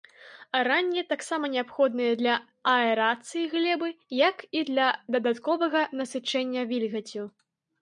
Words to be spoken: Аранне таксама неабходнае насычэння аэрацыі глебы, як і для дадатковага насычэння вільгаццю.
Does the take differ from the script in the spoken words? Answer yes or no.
yes